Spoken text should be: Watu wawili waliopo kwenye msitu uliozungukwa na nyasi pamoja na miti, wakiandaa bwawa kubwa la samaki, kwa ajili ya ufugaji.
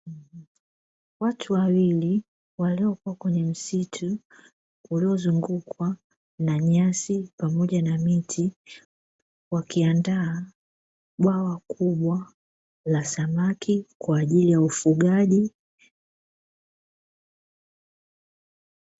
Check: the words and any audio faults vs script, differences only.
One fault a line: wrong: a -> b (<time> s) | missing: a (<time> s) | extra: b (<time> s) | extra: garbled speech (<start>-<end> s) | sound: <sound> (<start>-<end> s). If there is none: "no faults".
no faults